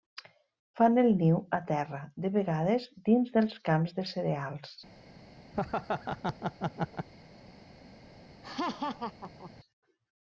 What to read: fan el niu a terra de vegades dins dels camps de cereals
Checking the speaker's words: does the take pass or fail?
pass